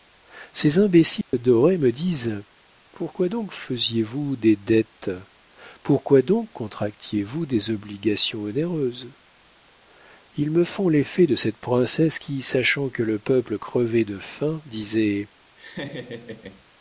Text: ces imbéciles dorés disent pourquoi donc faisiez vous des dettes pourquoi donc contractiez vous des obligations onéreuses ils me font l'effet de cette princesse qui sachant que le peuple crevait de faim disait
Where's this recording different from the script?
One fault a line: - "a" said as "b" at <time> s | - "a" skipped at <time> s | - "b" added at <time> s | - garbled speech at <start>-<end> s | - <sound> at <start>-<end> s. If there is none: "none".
- dropout at 1.2-1.3 s
- "me" added at 1.8 s
- laugh at 15.6-16.6 s